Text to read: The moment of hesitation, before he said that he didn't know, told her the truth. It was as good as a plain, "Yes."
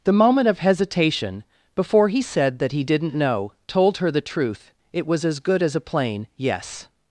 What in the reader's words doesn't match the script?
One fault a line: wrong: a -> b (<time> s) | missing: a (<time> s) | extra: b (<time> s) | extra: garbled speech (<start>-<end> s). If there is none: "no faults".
no faults